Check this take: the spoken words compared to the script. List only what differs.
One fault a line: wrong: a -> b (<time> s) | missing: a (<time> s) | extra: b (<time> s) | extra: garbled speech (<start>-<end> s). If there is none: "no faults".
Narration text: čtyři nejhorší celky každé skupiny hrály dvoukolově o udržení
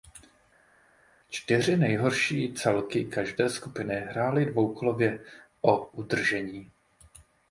no faults